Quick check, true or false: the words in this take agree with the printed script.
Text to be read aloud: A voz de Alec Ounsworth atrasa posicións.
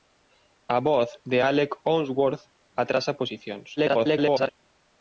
false